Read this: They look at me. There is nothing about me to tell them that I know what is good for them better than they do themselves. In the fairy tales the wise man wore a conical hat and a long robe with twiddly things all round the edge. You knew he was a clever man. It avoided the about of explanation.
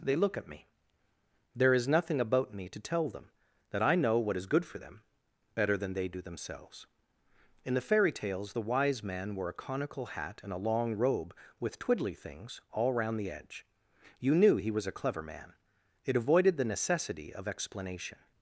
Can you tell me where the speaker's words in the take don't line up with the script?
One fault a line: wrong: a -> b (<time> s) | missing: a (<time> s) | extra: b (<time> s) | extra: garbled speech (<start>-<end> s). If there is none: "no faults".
wrong: about -> necessity (16.7 s)